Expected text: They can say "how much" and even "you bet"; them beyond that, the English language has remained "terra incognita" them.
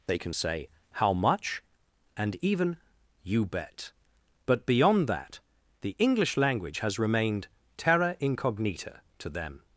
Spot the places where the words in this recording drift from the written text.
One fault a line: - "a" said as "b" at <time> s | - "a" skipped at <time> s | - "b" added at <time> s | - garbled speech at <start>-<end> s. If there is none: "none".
- "them" said as "but" at 4.5 s
- "to" added at 9.2 s